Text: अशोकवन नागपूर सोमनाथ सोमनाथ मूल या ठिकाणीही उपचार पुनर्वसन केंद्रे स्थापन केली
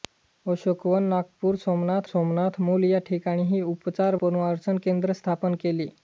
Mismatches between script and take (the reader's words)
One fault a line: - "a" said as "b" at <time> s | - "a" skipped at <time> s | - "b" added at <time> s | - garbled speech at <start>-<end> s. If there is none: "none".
none